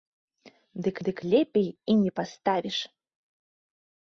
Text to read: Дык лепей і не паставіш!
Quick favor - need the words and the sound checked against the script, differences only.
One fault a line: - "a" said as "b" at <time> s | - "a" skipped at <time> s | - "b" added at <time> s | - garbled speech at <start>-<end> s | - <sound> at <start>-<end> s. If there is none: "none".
- "дык" added at 1.1 s